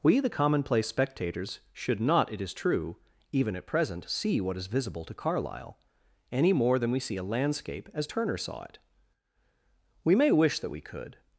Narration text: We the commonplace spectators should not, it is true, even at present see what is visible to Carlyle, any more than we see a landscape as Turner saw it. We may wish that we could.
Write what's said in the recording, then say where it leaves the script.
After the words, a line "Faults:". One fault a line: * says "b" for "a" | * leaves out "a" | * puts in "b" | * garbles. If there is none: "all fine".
We the commonplace spectators should not, it is true, even at present see what is visible to Carlyle, any more than we see a landscape as Turner saw it. We may wish that we could.
Faults:
all fine